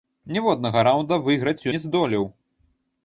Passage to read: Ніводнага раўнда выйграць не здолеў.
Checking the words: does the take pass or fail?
pass